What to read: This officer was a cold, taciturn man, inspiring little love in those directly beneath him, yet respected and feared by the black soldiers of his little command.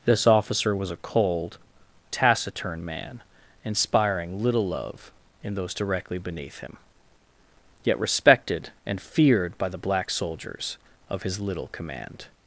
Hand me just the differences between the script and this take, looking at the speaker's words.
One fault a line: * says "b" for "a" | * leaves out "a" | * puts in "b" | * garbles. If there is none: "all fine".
all fine